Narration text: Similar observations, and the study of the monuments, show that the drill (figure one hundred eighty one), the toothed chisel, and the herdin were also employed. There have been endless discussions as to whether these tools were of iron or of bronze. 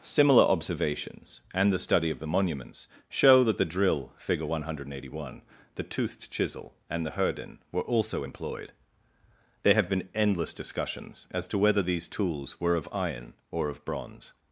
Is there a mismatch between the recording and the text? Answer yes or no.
no